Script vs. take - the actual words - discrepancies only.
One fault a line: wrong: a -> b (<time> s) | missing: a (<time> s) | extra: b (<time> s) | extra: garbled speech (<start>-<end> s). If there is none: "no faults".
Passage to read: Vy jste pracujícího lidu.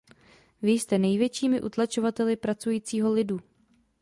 extra: největšími utlačovateli (1.0 s)